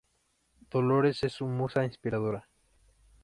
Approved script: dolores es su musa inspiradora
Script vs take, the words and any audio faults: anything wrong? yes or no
no